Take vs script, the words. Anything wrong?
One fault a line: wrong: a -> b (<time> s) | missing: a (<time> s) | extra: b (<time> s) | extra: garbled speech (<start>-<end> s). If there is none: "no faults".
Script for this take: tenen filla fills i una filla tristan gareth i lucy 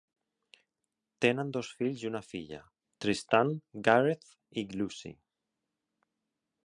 wrong: filla -> dos (1.6 s)